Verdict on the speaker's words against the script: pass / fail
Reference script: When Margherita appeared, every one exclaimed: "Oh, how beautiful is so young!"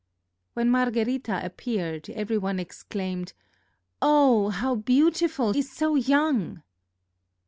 pass